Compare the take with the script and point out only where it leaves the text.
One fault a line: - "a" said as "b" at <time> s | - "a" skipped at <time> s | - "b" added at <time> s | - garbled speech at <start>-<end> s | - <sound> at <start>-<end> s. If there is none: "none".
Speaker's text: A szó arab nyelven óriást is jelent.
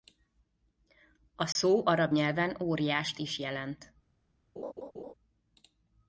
- dropout at 1.5-1.6 s
- laugh at 4.6-5.1 s